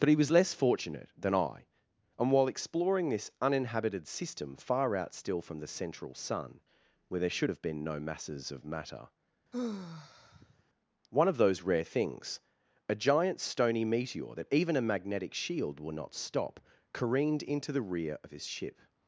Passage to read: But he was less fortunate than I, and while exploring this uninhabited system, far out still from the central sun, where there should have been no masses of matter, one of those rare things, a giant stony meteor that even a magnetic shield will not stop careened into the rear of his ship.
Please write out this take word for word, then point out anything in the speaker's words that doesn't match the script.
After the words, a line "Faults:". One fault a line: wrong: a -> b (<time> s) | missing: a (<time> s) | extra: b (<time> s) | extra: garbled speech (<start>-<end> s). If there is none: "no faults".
But he was less fortunate than I, and while exploring this uninhabited system, far out still from the central sun, where there should have been no masses of matter, one of those rare things, a giant stony meteor that even a magnetic shield will not stop careened into the rear of his ship.
Faults:
no faults